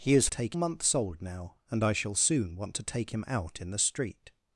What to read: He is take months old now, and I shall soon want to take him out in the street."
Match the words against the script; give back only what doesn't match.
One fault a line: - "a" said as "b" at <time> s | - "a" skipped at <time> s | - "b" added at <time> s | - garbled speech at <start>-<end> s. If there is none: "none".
none